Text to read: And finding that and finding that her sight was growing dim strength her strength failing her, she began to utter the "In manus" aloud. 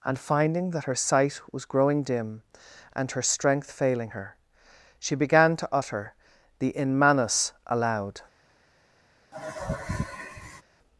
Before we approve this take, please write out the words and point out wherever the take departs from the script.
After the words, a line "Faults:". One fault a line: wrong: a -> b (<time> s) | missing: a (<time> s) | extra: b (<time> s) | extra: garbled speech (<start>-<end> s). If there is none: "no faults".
And finding that her sight was growing dim and her strength failing her, she began to utter the "In manus" aloud.
Faults:
missing: and finding that (0.8 s)
wrong: strength -> and (2.9 s)